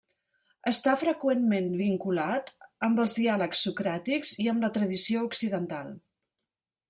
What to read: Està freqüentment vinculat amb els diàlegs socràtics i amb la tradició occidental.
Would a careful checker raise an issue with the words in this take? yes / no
no